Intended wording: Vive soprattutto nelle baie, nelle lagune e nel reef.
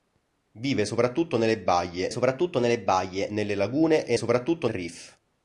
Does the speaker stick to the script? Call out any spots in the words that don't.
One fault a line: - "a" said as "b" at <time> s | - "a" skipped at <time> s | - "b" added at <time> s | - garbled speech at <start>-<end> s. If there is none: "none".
- "soprattutto" added at 2.1 s
- "baie nelle" added at 2.8 s
- "nel" said as "soprattutto" at 4.2 s